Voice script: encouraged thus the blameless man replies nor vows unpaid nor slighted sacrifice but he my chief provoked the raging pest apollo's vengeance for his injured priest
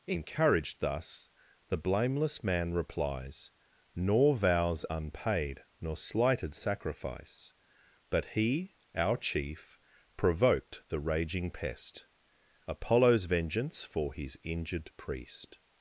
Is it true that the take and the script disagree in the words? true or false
true